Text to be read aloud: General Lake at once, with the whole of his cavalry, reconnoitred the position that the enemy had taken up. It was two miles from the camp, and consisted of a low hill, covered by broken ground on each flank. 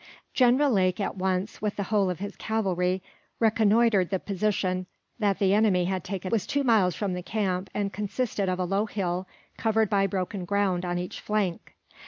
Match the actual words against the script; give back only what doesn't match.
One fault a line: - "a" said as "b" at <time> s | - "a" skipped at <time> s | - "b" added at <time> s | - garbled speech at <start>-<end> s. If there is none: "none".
- "up It" skipped at 6.3 s